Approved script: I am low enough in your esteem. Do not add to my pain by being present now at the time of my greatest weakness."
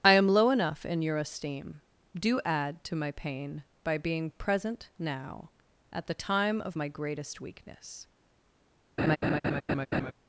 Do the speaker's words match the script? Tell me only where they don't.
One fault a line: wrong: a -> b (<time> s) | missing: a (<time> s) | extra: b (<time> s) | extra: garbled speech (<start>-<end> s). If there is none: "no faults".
missing: not (2.4 s)